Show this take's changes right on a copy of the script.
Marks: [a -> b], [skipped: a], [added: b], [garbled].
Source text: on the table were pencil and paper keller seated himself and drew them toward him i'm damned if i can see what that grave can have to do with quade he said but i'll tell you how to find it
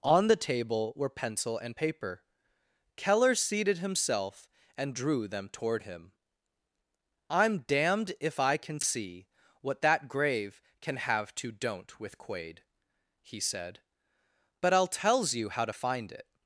on the table were pencil and paper keller seated himself and drew them toward him i'm damned if i can see what that grave can have to [do -> don't] with quade he said but i'll [tell -> tells] you how to find it